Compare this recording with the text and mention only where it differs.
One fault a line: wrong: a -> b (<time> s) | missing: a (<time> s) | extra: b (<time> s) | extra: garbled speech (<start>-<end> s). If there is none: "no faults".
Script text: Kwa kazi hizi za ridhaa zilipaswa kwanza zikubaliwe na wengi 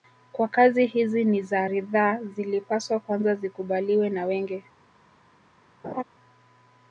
extra: ni (1.2 s)